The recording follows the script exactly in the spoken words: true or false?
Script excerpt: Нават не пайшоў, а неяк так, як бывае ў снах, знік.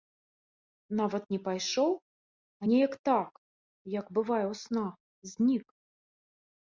true